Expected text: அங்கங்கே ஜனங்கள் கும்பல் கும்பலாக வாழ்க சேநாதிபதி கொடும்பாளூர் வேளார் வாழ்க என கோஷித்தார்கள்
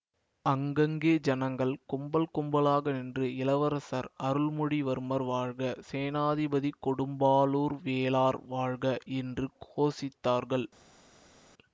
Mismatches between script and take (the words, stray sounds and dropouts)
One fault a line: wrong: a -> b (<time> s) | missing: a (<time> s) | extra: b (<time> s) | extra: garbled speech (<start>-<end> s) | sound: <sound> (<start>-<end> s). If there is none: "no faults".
extra: நின்று இளவரசர் அருள்மொழிவர்மர் (2.9 s)
wrong: என -> என்று (9.2 s)